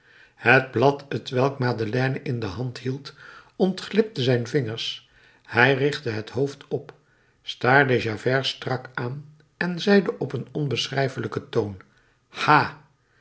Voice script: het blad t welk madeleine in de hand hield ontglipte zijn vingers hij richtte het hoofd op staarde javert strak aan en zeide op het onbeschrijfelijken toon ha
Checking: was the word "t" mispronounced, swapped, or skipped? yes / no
no